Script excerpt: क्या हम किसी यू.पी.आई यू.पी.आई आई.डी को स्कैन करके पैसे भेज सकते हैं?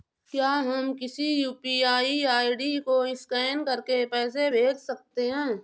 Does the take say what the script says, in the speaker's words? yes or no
no